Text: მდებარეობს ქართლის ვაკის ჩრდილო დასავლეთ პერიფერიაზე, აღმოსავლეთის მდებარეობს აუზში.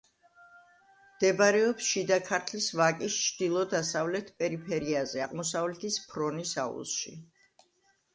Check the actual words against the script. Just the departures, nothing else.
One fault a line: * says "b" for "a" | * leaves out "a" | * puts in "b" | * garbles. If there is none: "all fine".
* puts in "შიდა"
* says "ფრონის" for "მდებარეობს"